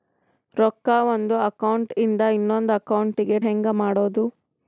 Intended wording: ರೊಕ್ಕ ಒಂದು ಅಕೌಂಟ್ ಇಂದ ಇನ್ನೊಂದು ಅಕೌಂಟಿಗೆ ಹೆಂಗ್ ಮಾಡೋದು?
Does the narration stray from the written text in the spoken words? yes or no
no